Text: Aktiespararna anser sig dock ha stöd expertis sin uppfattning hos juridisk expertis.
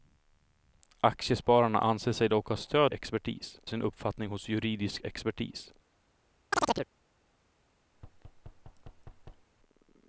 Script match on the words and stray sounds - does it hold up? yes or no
no